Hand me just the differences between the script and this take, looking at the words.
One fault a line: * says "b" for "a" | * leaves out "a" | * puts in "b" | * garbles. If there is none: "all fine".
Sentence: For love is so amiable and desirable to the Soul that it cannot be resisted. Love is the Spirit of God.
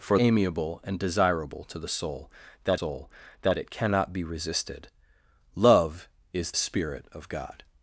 * leaves out "love is so"
* puts in "Soul that"
* leaves out "the"